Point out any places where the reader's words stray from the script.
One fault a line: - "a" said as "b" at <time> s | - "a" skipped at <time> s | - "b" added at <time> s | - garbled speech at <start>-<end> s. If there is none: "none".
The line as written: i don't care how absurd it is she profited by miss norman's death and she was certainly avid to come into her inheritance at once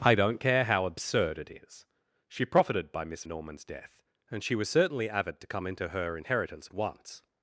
none